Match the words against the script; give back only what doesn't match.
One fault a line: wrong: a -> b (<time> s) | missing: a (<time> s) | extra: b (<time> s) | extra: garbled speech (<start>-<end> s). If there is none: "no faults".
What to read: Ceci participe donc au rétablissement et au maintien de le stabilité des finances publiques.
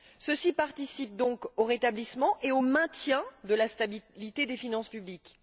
wrong: le -> la (3.5 s)